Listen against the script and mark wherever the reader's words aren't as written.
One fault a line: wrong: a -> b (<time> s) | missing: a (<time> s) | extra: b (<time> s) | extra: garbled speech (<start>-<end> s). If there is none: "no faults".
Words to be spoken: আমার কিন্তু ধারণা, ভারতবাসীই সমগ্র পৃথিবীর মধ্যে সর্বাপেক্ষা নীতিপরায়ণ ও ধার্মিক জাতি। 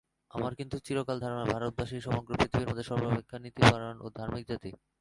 extra: চিরকাল (0.9 s)